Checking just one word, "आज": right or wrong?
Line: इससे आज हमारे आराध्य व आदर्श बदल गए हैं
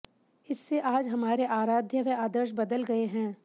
right